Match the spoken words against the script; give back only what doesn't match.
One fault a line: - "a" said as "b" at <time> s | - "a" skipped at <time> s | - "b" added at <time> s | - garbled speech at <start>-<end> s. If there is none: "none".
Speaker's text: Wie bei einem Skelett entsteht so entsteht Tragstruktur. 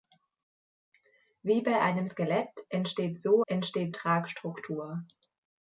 none